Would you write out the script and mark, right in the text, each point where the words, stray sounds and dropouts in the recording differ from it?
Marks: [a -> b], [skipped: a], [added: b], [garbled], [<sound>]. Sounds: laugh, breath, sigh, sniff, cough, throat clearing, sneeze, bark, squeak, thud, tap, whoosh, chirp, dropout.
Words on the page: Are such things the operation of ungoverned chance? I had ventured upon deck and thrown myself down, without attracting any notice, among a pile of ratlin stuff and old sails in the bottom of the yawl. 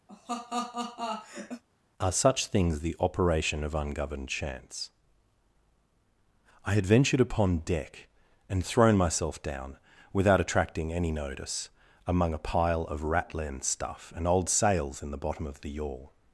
[laugh] Are such things the operation of ungoverned chance? I had ventured upon deck and thrown myself down, without attracting any notice, among a pile of ratlin stuff and old sails in the bottom of the yawl.